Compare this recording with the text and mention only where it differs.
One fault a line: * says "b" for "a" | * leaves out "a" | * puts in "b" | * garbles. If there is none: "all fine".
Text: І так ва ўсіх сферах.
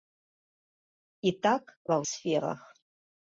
* leaves out "ўсіх"